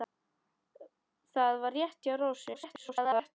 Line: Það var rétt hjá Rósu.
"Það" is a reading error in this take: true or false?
false